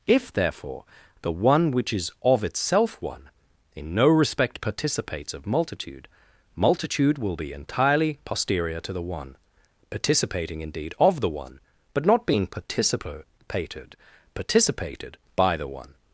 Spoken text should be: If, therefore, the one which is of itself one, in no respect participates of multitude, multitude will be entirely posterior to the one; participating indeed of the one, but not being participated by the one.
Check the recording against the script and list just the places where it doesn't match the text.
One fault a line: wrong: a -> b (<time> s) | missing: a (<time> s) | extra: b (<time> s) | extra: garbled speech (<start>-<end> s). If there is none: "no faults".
extra: participated (14.3 s)